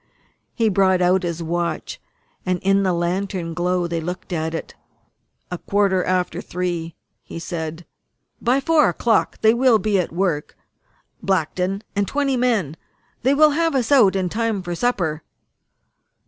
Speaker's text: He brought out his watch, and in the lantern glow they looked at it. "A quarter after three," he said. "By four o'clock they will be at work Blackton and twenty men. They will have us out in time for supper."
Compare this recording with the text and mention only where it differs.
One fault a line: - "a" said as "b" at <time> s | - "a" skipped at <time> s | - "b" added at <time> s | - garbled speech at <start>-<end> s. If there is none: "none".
none